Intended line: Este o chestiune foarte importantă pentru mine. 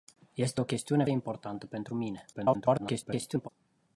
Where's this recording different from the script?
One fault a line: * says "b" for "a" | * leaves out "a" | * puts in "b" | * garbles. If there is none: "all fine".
* leaves out "foarte"
* garbles